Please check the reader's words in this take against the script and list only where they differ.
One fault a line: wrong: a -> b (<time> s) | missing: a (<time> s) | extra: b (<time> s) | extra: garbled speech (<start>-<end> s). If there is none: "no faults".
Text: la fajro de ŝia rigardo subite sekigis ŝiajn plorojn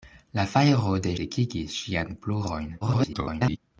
missing: ŝia rigardo subite (1.1 s)
extra: garbled speech (2.8-3.6 s)